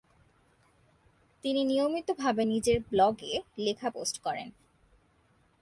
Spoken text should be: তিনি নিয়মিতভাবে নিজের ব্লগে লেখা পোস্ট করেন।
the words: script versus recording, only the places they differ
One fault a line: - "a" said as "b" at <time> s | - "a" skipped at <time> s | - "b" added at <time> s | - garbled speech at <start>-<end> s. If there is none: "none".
none